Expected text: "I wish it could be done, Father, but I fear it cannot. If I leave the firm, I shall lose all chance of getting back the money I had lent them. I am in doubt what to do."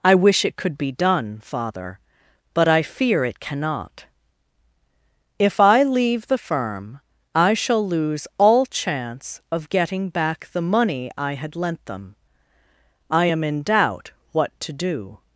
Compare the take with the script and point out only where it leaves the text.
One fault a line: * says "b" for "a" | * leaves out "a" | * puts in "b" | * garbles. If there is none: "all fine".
all fine